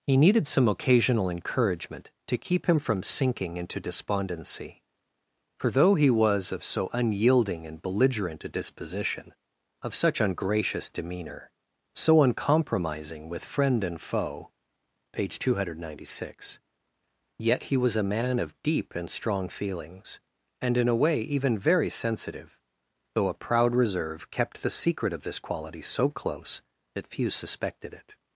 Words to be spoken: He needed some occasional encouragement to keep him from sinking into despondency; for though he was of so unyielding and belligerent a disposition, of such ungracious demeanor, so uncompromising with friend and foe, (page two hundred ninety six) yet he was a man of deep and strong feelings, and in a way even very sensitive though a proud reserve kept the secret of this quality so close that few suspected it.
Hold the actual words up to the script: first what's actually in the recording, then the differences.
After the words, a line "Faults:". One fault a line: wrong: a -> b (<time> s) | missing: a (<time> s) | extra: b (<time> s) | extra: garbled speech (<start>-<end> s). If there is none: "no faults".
He needed some occasional encouragement to keep him from sinking into despondency; for though he was of so unyielding and belligerent a disposition, of such ungracious demeanor, so uncompromising with friend and foe, (page two hundred ninety six) yet he was a man of deep and strong feelings, and in a way even very sensitive though a proud reserve kept the secret of this quality so close that few suspected it.
Faults:
no faults